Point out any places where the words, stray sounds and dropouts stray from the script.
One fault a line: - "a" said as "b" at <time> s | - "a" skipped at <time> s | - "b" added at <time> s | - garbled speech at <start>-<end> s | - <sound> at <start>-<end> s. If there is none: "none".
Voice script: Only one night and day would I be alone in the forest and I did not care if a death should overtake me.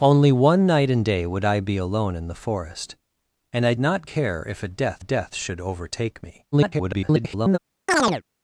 - "did" skipped at 3.8 s
- "death" added at 5.0 s
- garbled speech at 6.5-7.6 s
- chirp at 7.9-8.2 s